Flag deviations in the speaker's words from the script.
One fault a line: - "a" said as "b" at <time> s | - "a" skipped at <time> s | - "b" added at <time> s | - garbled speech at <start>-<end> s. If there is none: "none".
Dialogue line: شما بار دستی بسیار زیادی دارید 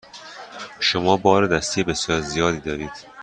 none